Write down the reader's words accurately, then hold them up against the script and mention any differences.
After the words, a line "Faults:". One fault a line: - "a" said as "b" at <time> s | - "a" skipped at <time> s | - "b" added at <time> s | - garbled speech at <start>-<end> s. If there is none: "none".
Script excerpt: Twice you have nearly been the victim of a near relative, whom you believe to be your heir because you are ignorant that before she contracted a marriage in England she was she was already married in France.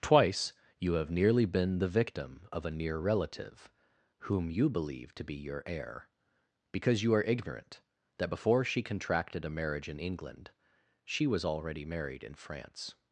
Twice you have nearly been the victim of a near relative, whom you believe to be your heir because you are ignorant that before she contracted a marriage in England she was already married in France.
Faults:
- "she was" skipped at 11.5 s